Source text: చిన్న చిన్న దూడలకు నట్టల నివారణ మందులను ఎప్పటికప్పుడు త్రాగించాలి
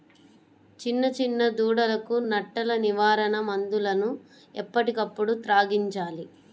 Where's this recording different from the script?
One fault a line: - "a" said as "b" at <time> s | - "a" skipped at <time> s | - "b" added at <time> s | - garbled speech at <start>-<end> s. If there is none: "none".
none